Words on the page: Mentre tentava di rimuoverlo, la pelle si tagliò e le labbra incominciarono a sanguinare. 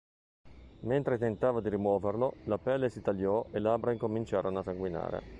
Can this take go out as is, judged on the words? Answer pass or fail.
fail